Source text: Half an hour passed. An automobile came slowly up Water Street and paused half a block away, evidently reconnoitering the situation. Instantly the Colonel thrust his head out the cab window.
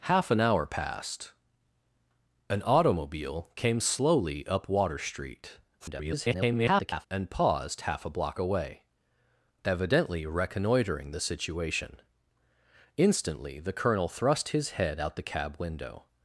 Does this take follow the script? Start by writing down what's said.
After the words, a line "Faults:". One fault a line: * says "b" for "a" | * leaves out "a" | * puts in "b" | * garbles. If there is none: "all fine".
Half an hour passed. An automobile came slowly up Water Street [garbled] and paused half a block away, evidently reconnoitering the situation. Instantly the Colonel thrust his head out the cab window.
Faults:
* garbles